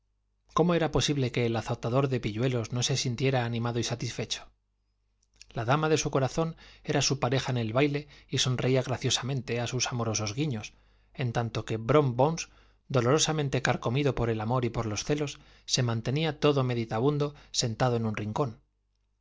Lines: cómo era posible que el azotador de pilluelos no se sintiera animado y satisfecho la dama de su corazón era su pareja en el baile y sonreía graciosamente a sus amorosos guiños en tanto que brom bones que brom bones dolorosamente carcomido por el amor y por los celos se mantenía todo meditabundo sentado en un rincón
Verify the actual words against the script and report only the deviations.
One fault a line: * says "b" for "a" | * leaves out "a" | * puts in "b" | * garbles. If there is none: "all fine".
* leaves out "que brom bones"